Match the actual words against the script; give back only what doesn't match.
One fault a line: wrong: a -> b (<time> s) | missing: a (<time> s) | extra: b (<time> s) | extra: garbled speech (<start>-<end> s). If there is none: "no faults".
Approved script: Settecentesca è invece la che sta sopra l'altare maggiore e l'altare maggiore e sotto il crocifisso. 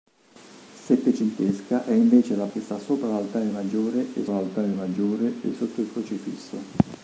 no faults